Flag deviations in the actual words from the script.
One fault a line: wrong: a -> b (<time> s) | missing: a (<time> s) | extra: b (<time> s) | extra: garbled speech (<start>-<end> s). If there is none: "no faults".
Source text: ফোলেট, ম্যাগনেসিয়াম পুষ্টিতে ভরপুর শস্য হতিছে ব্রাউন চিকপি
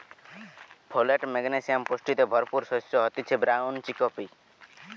no faults